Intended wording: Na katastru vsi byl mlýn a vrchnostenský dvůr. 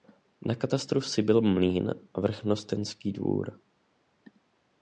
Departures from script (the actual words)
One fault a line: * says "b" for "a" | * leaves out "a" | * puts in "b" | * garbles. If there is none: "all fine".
all fine